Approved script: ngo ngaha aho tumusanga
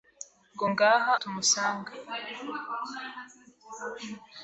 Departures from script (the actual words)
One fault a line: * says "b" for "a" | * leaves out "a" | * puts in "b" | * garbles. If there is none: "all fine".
* leaves out "aho"